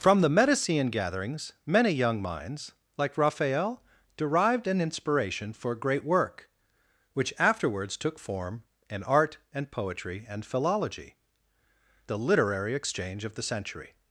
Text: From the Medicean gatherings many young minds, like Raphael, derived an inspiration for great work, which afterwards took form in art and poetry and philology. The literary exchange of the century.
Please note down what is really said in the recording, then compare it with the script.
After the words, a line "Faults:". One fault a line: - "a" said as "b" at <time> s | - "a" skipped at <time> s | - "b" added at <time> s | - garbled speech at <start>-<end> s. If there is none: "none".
From the Medicean gatherings many young minds, like Raphael, derived an inspiration for great work, which afterwards took form in art and poetry and philology. The literary exchange of the century.
Faults:
none